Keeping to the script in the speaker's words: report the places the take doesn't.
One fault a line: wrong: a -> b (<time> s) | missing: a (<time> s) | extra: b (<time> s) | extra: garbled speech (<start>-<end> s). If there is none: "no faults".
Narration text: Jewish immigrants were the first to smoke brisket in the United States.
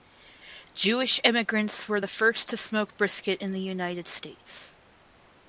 no faults